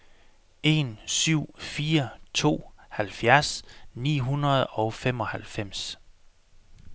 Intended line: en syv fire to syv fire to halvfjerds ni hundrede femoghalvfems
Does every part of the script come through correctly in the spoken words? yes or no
no